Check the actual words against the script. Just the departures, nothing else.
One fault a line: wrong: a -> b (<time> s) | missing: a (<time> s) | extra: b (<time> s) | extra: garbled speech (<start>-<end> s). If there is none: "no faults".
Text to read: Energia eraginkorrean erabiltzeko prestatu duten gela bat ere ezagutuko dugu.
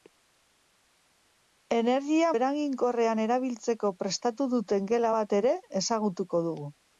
no faults